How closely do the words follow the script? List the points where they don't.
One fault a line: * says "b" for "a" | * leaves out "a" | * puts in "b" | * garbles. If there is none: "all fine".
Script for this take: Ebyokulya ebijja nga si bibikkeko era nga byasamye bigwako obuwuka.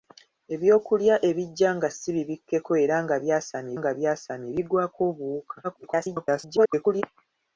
* puts in "nga byasamye"
* garbles